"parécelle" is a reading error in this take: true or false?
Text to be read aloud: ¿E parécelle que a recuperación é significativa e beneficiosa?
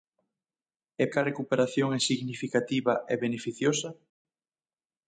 true